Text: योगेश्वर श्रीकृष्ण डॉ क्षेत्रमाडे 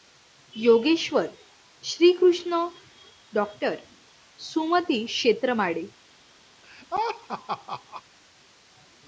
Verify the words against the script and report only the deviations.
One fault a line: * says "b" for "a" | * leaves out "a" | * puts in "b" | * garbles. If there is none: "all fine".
* puts in "सुमती"